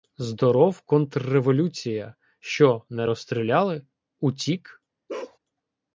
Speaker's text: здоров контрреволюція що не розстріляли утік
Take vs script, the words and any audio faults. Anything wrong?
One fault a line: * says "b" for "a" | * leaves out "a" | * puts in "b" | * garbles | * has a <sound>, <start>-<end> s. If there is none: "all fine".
* has a bark, 5.1-5.4 s